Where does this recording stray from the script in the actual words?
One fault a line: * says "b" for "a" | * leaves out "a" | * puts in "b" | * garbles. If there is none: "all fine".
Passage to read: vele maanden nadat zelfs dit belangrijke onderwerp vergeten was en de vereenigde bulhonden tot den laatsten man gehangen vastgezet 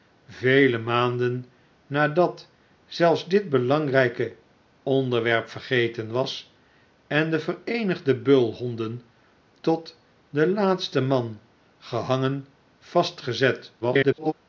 * garbles